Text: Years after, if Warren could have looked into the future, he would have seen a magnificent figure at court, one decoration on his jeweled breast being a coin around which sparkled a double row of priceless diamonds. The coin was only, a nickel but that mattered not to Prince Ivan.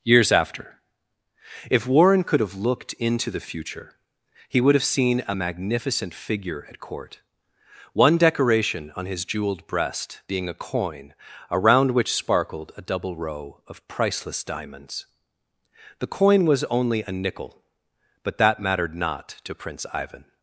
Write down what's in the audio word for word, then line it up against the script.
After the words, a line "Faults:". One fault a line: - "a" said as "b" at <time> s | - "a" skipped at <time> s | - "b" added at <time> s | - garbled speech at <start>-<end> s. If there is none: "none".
Years after, if Warren could have looked into the future, he would have seen a magnificent figure at court, one decoration on his jeweled breast being a coin around which sparkled a double row of priceless diamonds. The coin was only, a nickel but that mattered not to Prince Ivan.
Faults:
none